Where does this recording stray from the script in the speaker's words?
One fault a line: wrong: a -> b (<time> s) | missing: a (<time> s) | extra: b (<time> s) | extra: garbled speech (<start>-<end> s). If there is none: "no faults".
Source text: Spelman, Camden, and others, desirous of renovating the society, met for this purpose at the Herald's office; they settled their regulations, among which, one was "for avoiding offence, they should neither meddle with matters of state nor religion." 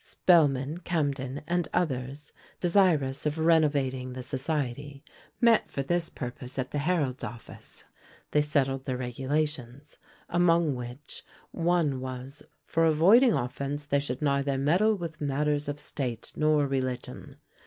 no faults